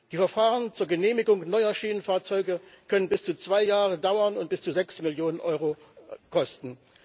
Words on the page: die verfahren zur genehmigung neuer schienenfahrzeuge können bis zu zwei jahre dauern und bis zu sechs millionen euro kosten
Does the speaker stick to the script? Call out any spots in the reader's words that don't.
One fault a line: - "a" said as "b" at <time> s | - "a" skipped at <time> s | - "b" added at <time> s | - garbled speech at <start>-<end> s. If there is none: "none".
none